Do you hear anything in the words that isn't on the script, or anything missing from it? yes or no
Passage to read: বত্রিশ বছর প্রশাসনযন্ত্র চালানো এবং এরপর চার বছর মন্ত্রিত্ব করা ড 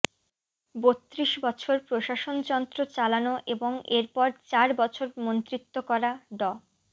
no